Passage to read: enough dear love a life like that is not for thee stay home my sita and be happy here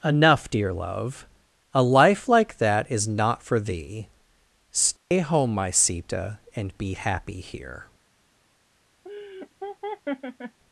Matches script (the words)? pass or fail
pass